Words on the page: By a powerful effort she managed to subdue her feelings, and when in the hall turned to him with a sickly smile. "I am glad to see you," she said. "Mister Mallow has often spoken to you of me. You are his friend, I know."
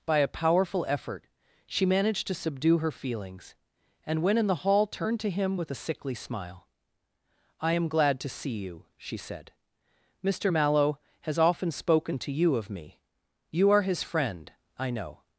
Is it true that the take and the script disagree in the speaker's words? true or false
false